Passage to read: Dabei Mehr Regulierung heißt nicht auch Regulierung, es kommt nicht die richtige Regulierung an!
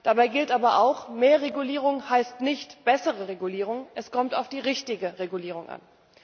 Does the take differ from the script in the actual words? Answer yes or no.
yes